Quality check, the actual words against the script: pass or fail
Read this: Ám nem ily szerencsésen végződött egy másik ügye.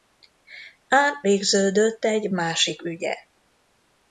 fail